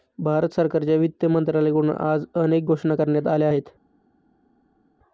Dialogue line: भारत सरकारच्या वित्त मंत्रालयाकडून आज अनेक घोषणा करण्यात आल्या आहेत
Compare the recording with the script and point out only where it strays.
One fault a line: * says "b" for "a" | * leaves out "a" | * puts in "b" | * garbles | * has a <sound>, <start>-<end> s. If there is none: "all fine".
all fine